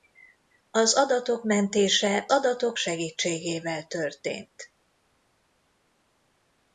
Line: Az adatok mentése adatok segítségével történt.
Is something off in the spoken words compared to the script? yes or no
no